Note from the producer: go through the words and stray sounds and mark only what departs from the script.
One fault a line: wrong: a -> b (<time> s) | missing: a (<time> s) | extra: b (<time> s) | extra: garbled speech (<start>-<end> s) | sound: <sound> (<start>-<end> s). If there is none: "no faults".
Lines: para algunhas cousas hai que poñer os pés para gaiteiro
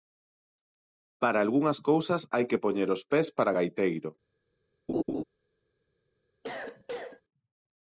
sound: laugh (4.9-5.2 s)
sound: cough (6.4-7.2 s)